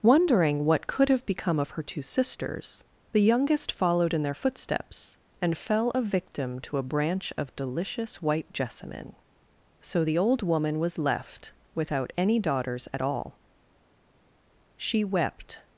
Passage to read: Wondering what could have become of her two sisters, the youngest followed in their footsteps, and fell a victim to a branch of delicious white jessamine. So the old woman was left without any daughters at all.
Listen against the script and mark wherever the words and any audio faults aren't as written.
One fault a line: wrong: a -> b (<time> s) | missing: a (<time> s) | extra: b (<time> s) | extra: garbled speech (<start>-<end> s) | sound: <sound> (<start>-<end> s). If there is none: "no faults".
extra: She wept (14.8 s)